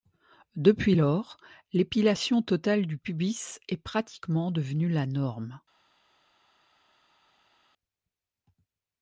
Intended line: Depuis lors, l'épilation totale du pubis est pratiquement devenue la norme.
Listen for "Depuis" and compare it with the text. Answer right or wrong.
right